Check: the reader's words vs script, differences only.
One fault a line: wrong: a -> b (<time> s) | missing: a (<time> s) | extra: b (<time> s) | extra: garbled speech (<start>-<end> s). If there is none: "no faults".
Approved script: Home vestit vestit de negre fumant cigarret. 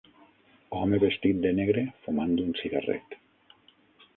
missing: vestit (1.4 s)
extra: un (2.5 s)